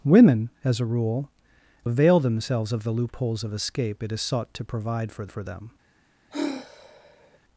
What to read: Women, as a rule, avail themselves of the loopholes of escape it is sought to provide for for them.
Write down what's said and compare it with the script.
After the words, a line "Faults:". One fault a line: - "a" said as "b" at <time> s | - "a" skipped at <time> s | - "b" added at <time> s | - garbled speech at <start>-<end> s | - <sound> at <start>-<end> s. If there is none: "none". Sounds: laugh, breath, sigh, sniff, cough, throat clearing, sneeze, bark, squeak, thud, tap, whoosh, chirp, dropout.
Women, as a rule, avail themselves of the loopholes of escape it is sought to provide for for them.
Faults:
- sigh at 6.3-7.4 s